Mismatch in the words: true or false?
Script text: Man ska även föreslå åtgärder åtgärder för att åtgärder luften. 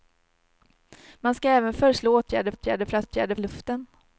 false